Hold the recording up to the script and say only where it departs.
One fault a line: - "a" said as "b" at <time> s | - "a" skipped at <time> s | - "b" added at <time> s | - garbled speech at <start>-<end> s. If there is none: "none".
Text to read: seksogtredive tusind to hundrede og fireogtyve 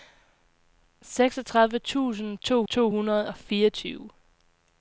- "to" added at 2.6 s